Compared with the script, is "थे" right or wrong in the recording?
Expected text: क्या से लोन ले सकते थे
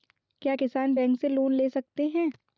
wrong